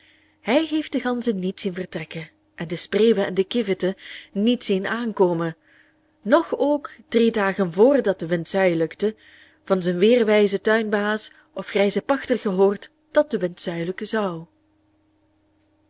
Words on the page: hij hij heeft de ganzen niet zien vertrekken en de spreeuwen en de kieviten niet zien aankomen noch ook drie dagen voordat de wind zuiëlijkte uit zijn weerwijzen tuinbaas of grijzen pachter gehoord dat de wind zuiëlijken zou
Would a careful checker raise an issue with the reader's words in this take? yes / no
yes